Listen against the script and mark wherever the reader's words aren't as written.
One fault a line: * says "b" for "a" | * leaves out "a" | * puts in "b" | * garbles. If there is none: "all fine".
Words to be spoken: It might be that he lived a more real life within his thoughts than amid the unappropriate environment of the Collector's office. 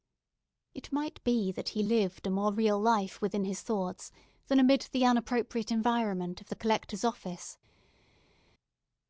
all fine